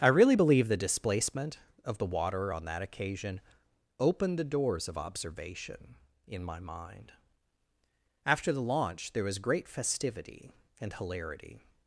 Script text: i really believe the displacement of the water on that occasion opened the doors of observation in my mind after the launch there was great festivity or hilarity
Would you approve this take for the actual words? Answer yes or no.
no